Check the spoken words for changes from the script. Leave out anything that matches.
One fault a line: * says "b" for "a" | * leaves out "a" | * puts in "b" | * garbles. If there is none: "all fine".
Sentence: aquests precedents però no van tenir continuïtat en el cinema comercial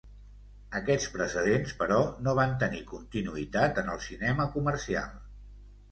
all fine